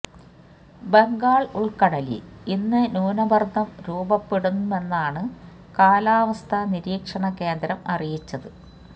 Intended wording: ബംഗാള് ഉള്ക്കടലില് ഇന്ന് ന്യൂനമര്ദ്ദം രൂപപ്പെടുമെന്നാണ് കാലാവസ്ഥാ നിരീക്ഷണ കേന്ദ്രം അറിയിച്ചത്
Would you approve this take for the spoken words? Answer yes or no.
yes